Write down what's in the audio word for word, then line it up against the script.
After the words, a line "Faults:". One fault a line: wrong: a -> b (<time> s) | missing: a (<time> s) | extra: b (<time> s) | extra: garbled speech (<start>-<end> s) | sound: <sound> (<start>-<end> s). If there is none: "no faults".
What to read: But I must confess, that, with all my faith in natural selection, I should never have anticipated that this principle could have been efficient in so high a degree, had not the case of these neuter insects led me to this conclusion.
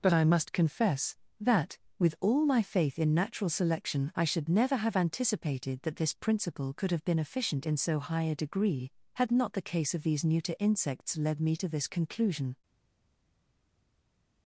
But I must confess, that, with all my faith in natural selection, I should never have anticipated that this principle could have been efficient in so high a degree, had not the case of these neuter insects led me to this conclusion.
Faults:
no faults